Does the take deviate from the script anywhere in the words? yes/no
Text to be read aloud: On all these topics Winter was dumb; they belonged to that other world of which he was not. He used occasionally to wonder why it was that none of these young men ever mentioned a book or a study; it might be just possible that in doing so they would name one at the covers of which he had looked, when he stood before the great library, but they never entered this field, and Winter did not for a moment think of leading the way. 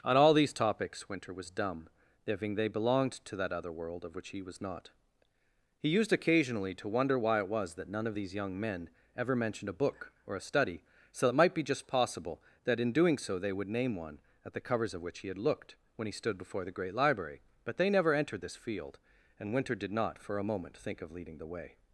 yes